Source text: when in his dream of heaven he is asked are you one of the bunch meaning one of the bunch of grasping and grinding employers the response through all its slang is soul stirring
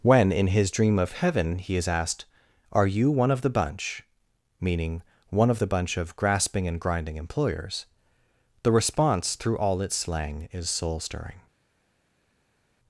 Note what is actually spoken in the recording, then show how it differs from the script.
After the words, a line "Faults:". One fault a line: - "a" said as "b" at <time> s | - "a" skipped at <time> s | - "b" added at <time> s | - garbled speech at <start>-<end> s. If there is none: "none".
when in his dream of heaven he is asked are you one of the bunch meaning one of the bunch of grasping and grinding employers the response through all its slang is soul stirring
Faults:
none